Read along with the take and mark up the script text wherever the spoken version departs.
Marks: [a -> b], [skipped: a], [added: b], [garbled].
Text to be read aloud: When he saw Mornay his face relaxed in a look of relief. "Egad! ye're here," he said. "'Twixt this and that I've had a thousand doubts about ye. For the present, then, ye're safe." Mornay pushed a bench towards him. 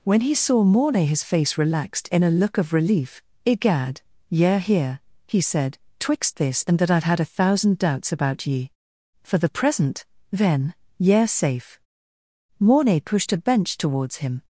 When he saw Mornay his face relaxed in a look of relief. "Egad! ye're here," he said. "'Twixt this and that I've had a thousand doubts about ye. For the present, then, ye're safe." Mornay pushed a bench towards him.